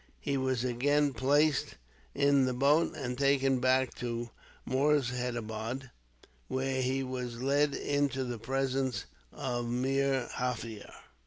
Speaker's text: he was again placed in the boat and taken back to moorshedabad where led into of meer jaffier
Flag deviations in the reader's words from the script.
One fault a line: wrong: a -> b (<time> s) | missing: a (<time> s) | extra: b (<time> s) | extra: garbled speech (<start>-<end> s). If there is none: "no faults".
extra: he was (6.8 s)
extra: the presence (8.2 s)